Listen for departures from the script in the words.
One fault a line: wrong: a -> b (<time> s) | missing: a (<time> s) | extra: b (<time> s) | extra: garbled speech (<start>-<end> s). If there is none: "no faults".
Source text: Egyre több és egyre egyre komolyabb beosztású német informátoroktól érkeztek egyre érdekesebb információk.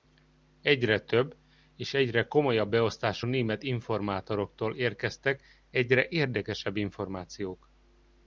missing: egyre (2.3 s)